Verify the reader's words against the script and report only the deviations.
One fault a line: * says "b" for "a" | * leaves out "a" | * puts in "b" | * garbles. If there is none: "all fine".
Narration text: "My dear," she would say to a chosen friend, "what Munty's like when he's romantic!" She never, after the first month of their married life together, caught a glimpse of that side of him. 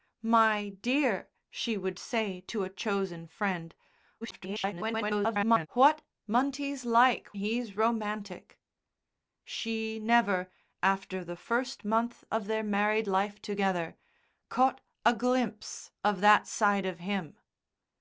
* garbles
* leaves out "when"